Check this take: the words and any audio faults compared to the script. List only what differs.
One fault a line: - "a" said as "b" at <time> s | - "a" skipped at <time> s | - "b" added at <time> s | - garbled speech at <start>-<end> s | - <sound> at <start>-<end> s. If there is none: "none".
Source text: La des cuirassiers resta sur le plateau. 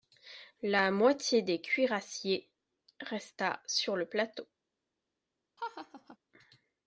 - "moitié" added at 0.9 s
- laugh at 5.6-6.2 s